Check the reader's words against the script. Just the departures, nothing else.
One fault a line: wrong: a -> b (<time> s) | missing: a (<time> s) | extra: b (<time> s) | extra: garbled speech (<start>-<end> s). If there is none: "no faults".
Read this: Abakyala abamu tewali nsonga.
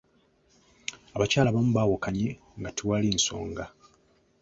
extra: baawukanye nga (1.8 s)